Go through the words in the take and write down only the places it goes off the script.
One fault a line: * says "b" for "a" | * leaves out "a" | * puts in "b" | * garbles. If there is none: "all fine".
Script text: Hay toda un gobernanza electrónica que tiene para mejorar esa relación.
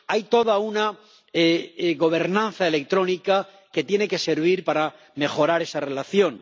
* says "una" for "un"
* puts in "que servir"